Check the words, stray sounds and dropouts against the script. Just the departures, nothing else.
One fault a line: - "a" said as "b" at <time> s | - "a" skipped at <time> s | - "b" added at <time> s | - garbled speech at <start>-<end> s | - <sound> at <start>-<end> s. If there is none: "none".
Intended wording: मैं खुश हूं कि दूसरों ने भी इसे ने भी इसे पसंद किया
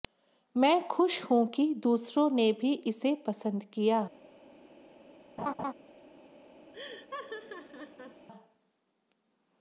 - "ने भी इसे" skipped at 3.1 s
- laugh at 5.4-5.7 s
- laugh at 6.7-8.3 s